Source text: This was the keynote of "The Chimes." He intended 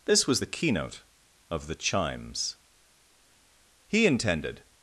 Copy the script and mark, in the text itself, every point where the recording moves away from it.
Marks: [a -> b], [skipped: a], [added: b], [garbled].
This was the keynote of "The Chimes." He intended